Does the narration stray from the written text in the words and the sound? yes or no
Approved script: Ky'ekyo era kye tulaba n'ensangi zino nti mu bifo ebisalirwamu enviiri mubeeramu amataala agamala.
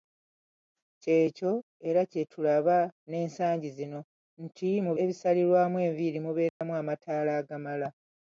yes